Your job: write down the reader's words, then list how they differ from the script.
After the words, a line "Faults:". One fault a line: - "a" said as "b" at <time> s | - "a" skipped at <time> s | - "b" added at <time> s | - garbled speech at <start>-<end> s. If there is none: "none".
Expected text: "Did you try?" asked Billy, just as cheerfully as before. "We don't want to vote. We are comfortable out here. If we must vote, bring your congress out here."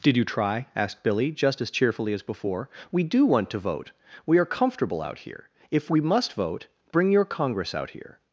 "Did you try?" asked Billy, just as cheerfully as before. "We do want to vote. We are comfortable out here. If we must vote, bring your congress out here."
Faults:
- "don't" said as "do" at 3.0 s